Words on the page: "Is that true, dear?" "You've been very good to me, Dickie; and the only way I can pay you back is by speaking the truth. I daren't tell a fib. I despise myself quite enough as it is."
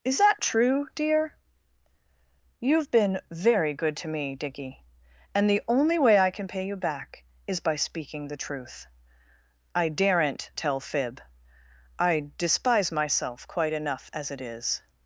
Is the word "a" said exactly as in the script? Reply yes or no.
no